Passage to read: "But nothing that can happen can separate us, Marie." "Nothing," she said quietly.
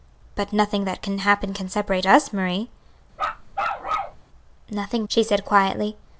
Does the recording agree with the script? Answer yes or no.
yes